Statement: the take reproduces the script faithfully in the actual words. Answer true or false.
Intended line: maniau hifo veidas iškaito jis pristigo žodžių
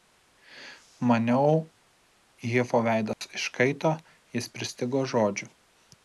true